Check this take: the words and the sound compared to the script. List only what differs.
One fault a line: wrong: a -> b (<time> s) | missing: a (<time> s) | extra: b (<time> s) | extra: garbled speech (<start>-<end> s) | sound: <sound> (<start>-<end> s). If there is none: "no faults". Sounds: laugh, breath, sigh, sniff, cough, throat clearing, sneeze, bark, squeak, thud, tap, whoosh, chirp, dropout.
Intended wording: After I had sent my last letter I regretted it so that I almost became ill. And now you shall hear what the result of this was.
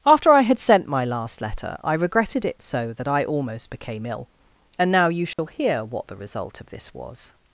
sound: dropout (5.3-5.4 s)